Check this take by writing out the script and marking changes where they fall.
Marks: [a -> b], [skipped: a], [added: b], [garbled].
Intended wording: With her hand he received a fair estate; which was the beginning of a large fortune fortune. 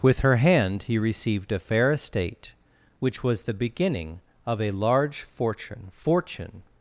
With her hand he received a fair estate; which was the beginning of a large fortune fortune.